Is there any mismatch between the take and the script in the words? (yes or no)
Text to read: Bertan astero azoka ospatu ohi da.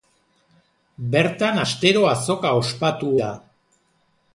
yes